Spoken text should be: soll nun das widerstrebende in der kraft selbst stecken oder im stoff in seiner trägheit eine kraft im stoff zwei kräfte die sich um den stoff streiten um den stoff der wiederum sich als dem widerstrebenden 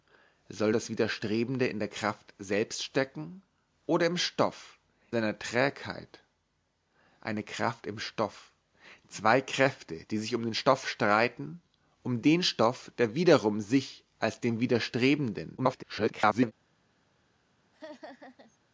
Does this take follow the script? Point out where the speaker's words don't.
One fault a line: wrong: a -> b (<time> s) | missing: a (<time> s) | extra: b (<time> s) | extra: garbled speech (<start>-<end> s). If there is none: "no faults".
missing: nun (0.7 s)
missing: in (4.8 s)
extra: garbled speech (15.6-16.5 s)